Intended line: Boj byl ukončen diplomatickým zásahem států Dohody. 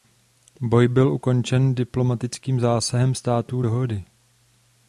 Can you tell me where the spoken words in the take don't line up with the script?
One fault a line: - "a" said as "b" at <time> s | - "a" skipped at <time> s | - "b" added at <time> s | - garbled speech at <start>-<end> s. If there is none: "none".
none